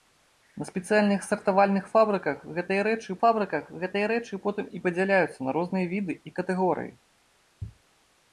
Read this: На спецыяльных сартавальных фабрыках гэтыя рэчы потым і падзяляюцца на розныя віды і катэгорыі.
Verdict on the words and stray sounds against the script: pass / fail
fail